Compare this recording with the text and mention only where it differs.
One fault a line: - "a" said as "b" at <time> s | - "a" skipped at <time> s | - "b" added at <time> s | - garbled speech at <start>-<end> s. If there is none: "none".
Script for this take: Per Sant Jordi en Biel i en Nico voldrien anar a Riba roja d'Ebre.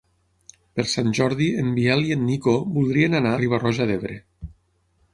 - "a" skipped at 3.4 s